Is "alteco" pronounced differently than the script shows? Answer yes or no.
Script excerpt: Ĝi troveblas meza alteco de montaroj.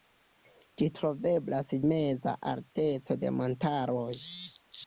no